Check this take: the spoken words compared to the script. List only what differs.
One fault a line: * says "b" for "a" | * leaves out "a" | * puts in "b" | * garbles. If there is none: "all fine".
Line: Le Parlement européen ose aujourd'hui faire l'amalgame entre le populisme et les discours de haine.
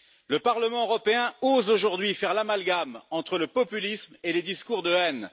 all fine